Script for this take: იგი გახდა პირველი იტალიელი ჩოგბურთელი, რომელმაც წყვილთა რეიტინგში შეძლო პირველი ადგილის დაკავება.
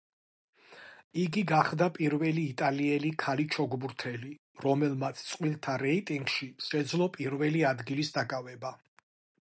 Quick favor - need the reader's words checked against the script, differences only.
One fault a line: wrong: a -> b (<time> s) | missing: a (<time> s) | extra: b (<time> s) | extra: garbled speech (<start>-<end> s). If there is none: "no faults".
extra: ქალი (3.2 s)